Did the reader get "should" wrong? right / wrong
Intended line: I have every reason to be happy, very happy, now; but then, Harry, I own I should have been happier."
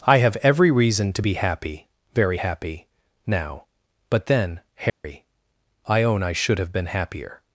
right